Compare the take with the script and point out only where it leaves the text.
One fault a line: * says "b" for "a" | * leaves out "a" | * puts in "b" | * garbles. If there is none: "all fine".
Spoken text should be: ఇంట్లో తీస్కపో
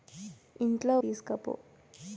all fine